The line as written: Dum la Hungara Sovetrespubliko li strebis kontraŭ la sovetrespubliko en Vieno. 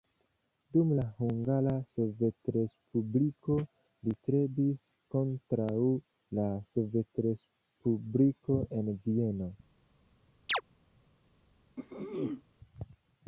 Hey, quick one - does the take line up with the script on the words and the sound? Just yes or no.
no